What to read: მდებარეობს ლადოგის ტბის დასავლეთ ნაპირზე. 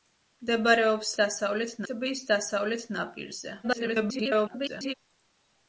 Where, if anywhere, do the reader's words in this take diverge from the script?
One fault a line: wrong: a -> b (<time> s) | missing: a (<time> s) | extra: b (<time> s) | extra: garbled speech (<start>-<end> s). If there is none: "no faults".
wrong: ლადოგის -> დასავლეთ (1.2 s)
extra: garbled speech (3.6-4.9 s)